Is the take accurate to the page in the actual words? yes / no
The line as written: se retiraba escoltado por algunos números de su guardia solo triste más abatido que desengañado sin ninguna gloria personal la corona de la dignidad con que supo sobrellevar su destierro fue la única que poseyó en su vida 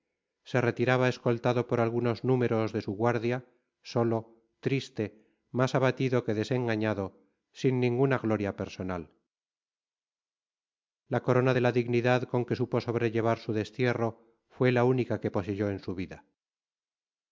yes